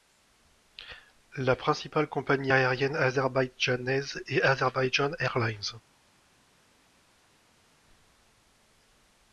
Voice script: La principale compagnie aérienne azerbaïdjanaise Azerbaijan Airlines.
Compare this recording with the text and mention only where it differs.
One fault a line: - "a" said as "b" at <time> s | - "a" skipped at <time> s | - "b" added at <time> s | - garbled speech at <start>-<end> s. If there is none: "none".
- "est" added at 4.3 s